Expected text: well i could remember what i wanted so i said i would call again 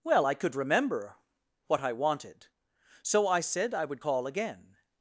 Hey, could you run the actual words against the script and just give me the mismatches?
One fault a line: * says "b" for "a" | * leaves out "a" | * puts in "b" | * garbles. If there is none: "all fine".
all fine